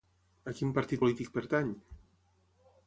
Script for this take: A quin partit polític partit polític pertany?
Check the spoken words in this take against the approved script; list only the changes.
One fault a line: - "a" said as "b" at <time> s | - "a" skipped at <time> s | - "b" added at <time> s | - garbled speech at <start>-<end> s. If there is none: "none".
- "partit polític" skipped at 1.3 s